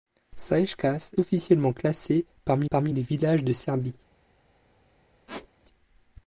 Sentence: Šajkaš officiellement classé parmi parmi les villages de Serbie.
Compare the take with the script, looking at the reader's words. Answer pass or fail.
pass